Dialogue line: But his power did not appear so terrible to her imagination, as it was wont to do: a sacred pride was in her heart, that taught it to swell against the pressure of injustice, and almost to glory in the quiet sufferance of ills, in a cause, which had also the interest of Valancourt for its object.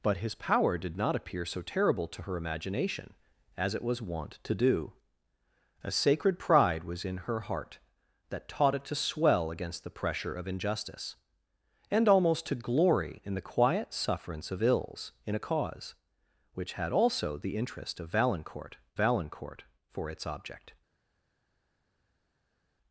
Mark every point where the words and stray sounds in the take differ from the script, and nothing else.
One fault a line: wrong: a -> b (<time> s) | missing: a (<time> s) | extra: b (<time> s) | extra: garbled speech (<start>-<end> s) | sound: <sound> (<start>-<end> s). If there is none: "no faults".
extra: Valancourt (18.9 s)